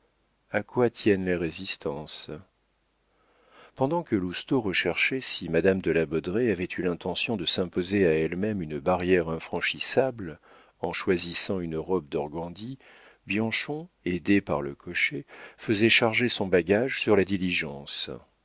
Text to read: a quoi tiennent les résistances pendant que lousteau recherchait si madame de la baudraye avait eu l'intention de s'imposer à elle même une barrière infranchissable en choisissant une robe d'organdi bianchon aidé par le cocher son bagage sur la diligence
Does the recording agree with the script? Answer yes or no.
no